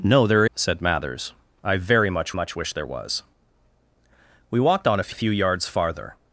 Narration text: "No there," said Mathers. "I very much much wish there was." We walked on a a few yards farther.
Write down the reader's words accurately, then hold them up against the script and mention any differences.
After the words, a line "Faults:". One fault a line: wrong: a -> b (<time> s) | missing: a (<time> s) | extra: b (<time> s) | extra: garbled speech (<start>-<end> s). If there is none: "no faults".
"No there," said Mathers. "I very much much wish there was." We walked on a a few yards farther.
Faults:
no faults